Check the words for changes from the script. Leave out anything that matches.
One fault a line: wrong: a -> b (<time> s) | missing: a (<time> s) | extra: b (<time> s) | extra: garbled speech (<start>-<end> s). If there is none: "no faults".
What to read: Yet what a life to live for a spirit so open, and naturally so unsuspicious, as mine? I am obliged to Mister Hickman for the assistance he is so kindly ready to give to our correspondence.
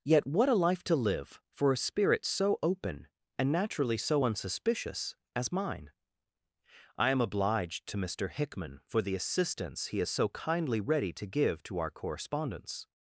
no faults